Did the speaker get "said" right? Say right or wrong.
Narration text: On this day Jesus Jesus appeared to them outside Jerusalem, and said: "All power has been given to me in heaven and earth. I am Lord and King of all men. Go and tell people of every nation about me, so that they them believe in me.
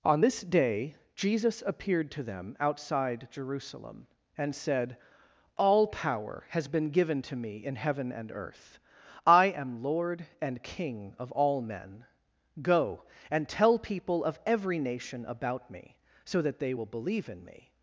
right